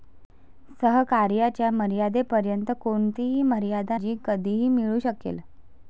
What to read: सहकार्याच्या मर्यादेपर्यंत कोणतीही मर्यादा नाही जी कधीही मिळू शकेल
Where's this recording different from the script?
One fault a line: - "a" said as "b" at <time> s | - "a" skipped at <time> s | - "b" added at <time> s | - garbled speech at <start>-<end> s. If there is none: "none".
- "नाही" skipped at 4.0 s